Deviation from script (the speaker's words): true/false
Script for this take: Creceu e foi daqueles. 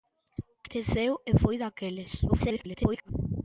true